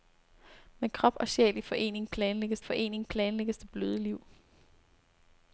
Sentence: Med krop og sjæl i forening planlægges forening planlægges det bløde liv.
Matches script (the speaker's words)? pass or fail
pass